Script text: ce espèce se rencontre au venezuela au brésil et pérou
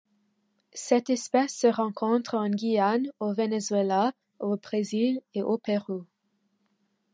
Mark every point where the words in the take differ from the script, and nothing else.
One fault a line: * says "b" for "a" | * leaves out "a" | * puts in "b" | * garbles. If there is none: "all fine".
* says "cette" for "ce"
* puts in "en guyane"
* puts in "au"